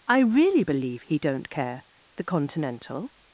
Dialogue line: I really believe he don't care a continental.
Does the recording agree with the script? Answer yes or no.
no